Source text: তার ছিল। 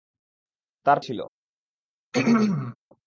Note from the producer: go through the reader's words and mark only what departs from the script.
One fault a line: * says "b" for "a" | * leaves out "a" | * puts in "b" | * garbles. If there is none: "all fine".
all fine